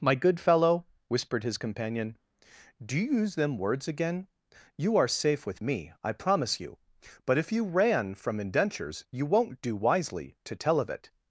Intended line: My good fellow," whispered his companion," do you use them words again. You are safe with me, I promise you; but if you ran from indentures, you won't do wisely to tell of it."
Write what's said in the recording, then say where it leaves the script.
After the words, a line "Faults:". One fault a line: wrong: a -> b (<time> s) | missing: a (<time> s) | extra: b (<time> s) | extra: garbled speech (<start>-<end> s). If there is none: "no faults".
My good fellow," whispered his companion," do you use them words again. You are safe with me, I promise you; but if you ran from indentures, you won't do wisely to tell of it."
Faults:
no faults